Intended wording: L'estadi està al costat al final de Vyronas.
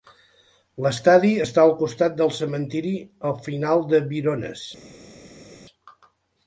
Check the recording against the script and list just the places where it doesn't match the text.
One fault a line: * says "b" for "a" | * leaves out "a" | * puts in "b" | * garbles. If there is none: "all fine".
* puts in "del cementiri"